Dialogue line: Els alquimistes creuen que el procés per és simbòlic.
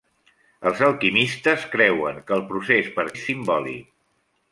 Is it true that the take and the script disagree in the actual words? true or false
false